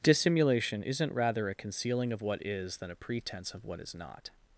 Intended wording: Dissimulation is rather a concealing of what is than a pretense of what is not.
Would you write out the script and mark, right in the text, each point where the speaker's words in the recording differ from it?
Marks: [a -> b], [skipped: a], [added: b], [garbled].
Dissimulation [is -> isn't] rather a concealing of what is than a pretense of what is not.